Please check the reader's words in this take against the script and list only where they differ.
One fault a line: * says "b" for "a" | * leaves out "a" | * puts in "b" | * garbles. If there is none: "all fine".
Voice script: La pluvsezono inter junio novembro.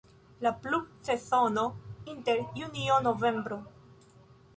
all fine